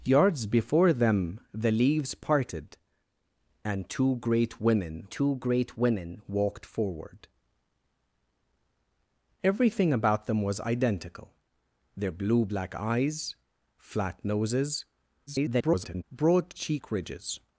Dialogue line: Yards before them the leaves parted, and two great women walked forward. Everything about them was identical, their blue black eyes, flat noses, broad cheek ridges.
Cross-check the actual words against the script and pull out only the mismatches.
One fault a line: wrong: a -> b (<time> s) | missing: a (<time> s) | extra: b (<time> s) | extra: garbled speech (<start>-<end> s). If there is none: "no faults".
extra: two great women (5.1 s)
extra: garbled speech (15.3-16.0 s)